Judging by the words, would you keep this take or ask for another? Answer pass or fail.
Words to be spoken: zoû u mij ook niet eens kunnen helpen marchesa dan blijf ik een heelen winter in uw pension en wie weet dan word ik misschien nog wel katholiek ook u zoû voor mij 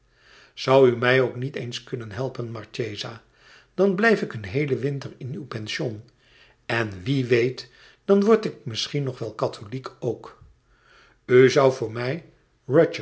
pass